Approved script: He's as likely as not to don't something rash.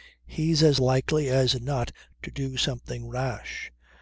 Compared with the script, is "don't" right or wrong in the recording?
wrong